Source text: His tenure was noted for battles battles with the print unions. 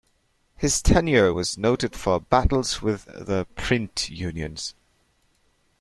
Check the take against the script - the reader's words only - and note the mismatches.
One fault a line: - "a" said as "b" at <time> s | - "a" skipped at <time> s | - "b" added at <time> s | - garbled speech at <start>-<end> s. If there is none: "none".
- "battles" skipped at 2.8 s